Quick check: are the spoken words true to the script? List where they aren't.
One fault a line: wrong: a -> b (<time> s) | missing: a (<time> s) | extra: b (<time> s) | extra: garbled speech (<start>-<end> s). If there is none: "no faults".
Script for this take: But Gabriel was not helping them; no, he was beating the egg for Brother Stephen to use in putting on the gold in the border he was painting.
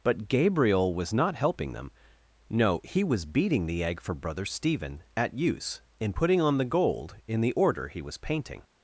wrong: to -> at (5.2 s)
wrong: border -> order (7.5 s)